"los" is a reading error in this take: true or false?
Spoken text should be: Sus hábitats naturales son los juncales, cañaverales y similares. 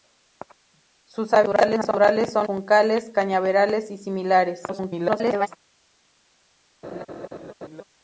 true